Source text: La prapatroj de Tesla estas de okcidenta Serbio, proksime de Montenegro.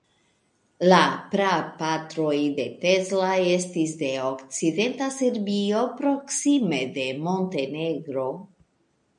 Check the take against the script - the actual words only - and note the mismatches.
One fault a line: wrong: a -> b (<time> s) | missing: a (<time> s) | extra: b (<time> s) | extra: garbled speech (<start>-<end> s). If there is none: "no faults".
wrong: estas -> estis (3.5 s)